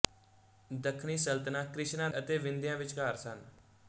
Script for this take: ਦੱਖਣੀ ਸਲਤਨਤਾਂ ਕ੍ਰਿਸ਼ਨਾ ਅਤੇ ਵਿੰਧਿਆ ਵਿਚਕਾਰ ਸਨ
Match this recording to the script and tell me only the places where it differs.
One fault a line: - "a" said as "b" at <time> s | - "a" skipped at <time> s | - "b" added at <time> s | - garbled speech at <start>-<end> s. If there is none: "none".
none